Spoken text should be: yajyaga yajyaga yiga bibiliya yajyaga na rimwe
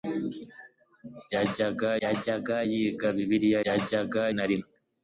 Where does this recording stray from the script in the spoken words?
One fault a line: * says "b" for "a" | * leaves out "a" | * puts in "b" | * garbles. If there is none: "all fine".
all fine